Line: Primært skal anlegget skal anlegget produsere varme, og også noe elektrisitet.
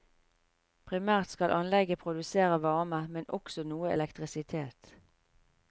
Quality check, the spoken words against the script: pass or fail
fail